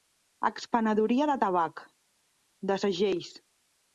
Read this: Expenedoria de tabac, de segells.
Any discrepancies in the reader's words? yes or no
no